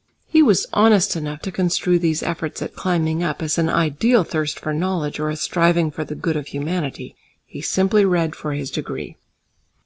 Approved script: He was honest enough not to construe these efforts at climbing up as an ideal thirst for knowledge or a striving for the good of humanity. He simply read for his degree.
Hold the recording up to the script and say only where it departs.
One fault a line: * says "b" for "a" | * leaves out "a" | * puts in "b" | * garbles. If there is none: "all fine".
* leaves out "not"